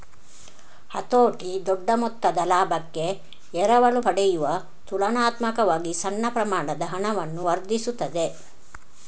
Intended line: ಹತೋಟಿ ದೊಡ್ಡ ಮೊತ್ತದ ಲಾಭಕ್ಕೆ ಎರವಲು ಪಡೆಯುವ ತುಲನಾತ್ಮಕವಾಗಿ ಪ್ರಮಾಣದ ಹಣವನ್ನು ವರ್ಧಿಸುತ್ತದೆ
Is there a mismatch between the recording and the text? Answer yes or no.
yes